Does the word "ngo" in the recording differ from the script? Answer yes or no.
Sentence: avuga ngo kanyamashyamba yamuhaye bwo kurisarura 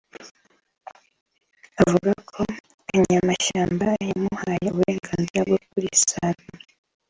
yes